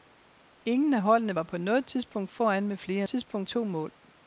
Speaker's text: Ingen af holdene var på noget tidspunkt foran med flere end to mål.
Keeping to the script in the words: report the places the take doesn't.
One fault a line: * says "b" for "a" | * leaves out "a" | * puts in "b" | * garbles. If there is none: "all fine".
* says "tidspunkt" for "end"